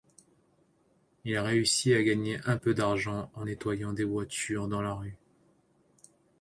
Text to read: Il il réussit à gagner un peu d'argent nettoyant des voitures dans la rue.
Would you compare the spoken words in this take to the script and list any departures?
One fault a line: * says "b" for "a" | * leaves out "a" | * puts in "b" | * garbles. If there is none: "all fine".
* leaves out "il"
* puts in "en"